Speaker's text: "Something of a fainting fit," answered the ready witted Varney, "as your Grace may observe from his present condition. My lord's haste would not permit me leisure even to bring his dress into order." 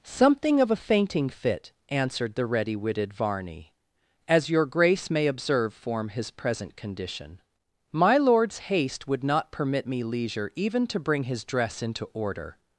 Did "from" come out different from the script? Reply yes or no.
yes